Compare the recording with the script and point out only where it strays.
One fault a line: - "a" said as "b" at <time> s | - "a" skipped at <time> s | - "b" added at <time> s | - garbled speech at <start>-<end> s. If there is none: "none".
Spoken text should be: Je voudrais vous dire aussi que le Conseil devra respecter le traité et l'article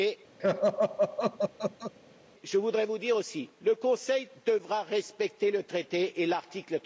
none